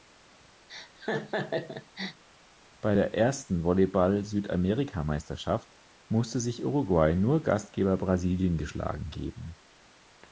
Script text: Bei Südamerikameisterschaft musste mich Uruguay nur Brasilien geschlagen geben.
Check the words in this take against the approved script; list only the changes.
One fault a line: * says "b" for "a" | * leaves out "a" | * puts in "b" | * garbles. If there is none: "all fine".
* puts in "der ersten Volleyball"
* says "sich" for "mich"
* puts in "Gastgeber"